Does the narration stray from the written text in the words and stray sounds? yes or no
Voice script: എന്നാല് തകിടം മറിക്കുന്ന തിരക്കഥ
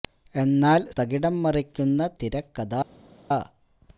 no